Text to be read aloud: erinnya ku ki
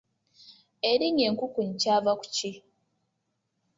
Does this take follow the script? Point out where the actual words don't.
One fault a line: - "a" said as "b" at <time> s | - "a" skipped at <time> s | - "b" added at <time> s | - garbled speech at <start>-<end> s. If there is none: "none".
- "enkukunyi kyava" added at 1.3 s